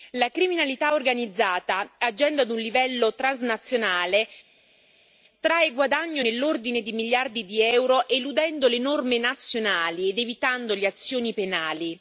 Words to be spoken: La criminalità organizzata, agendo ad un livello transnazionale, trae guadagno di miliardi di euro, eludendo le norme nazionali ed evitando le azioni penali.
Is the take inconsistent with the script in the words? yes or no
yes